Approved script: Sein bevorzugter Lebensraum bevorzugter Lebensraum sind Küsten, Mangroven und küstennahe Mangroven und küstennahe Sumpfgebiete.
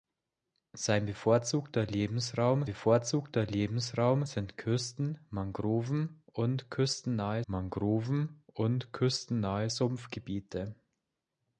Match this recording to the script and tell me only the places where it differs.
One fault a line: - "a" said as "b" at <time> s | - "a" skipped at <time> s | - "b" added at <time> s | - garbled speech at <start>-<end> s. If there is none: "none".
none